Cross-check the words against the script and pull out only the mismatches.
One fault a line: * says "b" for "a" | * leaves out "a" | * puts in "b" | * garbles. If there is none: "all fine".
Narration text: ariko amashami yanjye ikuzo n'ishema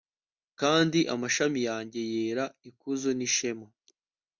* says "kandi" for "ariko"
* puts in "yera"